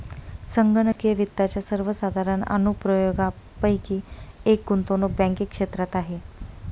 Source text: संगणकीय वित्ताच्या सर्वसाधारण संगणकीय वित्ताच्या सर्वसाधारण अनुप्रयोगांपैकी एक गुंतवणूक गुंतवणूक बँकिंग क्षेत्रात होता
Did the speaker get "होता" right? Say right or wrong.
wrong